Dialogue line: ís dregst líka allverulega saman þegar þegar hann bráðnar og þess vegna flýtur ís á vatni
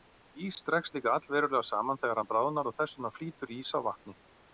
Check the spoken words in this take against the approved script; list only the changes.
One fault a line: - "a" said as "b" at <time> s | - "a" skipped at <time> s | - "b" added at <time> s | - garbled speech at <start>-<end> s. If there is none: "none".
- "þegar" skipped at 2.2 s